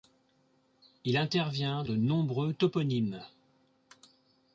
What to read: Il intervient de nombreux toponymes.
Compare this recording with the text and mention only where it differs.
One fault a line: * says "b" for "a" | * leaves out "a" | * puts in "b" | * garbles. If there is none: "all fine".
all fine